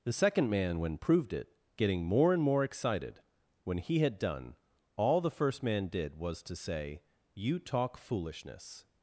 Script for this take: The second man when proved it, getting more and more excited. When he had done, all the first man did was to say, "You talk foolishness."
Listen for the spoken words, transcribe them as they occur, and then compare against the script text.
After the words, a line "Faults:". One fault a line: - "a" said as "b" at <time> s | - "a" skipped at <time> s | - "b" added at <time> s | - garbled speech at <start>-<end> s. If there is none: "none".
The second man when proved it, getting more and more excited. When he had done, all the first man did was to say, "You talk foolishness."
Faults:
none